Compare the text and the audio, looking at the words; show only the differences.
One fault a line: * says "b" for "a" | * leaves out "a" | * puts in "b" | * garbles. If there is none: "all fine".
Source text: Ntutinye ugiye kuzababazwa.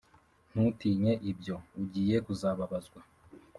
* puts in "ibyo"